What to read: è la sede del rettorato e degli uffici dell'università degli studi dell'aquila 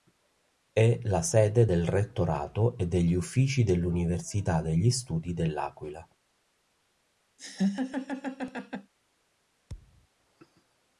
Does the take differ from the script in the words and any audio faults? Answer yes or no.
yes